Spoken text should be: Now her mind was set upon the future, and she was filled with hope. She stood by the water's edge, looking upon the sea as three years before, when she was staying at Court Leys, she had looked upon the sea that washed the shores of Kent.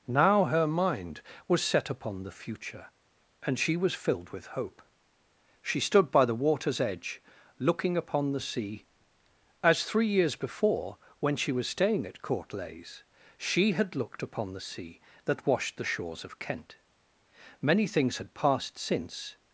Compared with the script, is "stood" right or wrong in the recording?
right